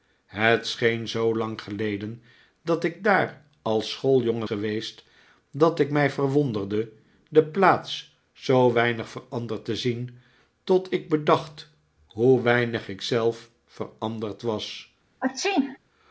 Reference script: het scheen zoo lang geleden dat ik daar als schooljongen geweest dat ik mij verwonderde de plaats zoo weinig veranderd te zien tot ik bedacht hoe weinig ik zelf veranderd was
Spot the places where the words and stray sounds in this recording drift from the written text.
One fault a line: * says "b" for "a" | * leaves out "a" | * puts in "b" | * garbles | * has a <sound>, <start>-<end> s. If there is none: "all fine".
* has a sneeze, 15.2-15.8 s